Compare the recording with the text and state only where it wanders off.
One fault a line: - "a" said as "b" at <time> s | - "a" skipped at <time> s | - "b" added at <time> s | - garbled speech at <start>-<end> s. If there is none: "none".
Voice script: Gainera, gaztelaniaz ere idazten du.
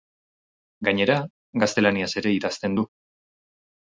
none